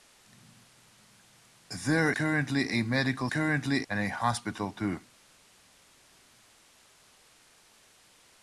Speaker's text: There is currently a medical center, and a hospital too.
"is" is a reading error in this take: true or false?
true